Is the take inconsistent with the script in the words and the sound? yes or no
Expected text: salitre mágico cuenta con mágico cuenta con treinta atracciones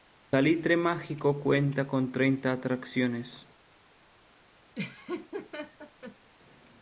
yes